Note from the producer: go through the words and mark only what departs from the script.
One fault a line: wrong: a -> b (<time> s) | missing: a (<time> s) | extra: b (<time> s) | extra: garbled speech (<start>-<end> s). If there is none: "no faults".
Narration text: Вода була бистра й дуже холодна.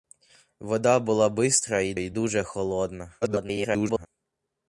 extra: й (1.9 s)
extra: garbled speech (3.2-4.1 s)